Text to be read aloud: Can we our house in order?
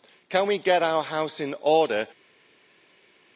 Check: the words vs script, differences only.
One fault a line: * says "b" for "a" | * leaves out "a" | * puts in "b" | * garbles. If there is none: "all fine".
* puts in "get"